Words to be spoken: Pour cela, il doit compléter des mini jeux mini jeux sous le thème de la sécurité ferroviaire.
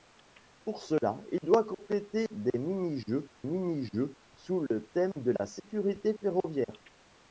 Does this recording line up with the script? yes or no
yes